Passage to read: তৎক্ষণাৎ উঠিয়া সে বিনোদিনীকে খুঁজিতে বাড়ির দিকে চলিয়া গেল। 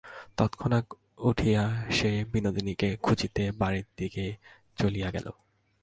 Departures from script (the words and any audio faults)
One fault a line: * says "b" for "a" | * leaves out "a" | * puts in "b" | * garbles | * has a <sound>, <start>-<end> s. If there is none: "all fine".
all fine